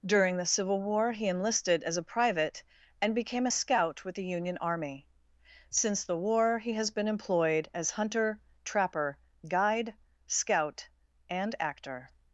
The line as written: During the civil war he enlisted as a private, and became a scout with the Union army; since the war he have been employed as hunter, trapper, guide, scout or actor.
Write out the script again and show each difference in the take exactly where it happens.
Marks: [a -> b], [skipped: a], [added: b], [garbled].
During the civil war he enlisted as a private, and became a scout with the Union army; since the war he [have -> has] been employed as hunter, trapper, guide, scout [or -> and] actor.